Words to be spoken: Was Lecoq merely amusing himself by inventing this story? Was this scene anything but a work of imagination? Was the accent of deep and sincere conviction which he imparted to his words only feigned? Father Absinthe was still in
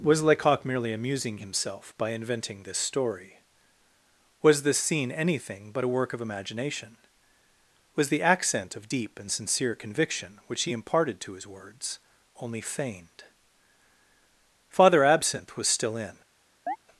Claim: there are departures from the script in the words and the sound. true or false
true